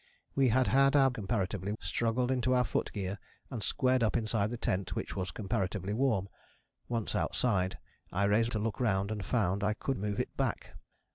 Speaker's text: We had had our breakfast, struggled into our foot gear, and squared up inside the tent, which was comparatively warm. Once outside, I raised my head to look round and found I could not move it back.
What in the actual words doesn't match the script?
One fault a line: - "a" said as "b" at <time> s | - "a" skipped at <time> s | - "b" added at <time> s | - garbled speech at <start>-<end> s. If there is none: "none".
- "breakfast" said as "comparatively" at 1.1 s
- "my head" skipped at 8.5 s
- "not" skipped at 10.0 s